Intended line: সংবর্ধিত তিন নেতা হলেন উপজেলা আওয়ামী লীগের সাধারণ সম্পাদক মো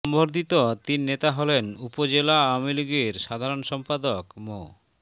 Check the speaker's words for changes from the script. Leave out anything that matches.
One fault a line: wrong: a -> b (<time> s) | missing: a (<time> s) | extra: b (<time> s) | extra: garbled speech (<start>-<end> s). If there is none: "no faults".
no faults